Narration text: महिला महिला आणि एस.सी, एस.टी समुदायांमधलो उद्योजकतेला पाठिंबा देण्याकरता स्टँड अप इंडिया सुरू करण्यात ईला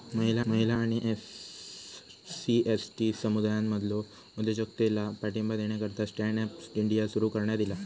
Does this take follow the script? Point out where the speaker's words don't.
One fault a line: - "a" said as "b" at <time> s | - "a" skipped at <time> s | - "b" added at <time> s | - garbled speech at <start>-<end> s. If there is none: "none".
none